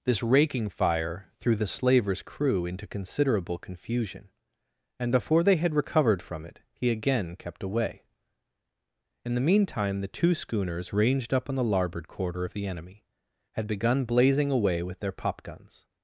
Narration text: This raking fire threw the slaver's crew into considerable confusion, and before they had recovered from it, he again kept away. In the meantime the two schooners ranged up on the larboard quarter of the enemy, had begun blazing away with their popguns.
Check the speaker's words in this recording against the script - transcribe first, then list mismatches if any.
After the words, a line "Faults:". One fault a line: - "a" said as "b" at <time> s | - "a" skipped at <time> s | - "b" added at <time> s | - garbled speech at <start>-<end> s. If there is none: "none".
This raking fire threw the slaver's crew into considerable confusion, and before they had recovered from it, he again kept away. In the meantime the two schooners ranged up on the larboard quarter of the enemy, had begun blazing away with their popguns.
Faults:
none